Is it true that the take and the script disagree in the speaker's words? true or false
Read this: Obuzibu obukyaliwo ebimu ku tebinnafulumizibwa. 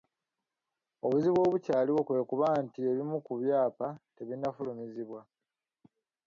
true